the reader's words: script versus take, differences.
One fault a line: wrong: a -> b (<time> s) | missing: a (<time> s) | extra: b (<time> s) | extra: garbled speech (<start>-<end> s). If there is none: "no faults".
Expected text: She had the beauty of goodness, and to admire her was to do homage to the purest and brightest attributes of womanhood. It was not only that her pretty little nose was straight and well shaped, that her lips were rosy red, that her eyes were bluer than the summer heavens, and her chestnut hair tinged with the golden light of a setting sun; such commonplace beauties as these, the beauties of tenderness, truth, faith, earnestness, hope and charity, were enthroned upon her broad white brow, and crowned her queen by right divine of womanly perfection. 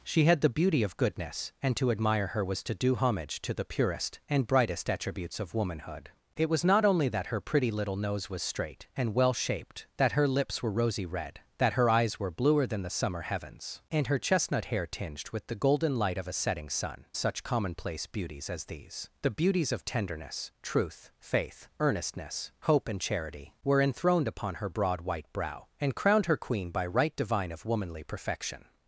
no faults